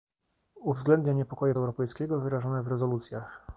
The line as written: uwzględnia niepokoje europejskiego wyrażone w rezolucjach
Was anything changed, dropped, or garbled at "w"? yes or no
no